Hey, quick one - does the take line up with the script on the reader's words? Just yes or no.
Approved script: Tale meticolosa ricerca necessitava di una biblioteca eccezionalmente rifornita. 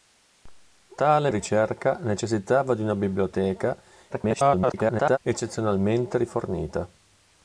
no